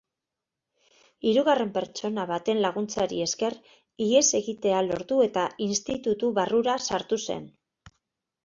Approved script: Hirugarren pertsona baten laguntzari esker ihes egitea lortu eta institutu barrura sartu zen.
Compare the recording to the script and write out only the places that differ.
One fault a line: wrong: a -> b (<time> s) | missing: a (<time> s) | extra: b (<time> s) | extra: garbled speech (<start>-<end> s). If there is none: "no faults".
no faults